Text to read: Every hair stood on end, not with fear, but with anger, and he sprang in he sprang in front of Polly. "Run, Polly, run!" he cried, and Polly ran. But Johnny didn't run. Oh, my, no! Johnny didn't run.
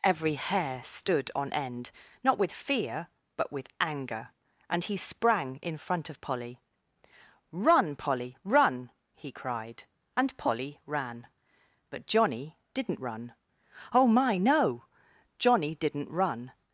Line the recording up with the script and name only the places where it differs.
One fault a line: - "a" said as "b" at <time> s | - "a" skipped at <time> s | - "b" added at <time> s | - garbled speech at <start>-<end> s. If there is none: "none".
- "he sprang in" skipped at 5.8 s